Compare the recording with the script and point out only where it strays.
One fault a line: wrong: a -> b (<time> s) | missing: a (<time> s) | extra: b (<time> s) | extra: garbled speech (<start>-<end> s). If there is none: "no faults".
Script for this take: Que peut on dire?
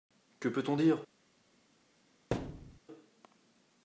no faults